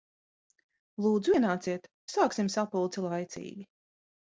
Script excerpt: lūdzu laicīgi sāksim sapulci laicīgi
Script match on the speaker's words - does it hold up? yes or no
no